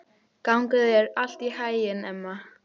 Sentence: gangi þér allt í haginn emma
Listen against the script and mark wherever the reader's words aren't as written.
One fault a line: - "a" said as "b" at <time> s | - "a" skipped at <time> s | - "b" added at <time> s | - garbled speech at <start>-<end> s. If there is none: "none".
none